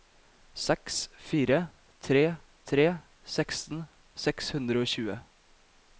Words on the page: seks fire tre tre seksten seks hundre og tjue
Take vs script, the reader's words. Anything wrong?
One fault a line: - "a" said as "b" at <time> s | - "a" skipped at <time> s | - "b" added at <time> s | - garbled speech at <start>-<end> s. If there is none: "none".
none